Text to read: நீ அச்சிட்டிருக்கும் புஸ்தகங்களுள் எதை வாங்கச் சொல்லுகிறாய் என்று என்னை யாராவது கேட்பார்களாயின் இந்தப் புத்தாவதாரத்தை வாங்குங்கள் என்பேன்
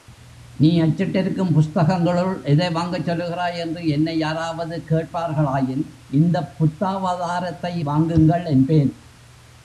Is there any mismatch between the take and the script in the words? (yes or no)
no